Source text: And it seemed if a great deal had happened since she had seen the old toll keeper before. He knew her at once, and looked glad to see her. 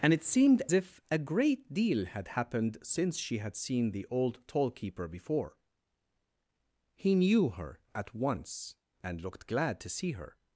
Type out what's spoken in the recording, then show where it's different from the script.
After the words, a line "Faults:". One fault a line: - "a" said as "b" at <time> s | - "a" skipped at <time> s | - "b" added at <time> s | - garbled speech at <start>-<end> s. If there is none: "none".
And it seemed if a great deal had happened since she had seen the old toll keeper before. He knew her at once, and looked glad to see her.
Faults:
none